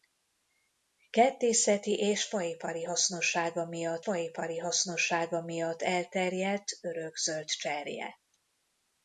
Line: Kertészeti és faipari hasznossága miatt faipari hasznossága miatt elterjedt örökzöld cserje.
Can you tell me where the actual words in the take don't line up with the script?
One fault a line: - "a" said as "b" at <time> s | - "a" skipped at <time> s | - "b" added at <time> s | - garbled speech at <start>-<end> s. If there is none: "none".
none